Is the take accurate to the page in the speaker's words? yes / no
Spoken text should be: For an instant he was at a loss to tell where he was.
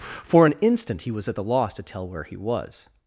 no